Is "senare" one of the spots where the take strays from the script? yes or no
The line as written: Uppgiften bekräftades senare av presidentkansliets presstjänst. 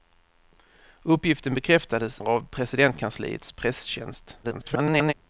yes